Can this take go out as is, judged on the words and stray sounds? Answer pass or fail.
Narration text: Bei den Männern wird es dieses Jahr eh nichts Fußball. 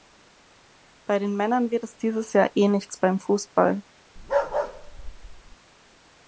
fail